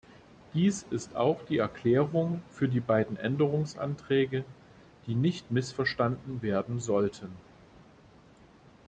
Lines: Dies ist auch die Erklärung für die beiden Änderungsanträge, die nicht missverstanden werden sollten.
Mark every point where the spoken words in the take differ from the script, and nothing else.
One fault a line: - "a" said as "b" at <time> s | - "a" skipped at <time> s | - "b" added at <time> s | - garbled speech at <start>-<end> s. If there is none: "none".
none